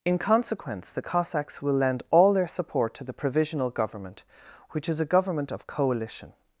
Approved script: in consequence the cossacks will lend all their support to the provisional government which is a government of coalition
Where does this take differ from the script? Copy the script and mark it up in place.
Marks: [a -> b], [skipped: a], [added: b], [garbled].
in consequence the cossacks will lend all their support to the provisional government which is a government of coalition